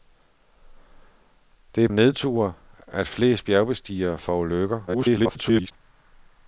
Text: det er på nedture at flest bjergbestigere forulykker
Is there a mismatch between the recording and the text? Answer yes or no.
yes